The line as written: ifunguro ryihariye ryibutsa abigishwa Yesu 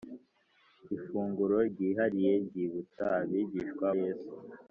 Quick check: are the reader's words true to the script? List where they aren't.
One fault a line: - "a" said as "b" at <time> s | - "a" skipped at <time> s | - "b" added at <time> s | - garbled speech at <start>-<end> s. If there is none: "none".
none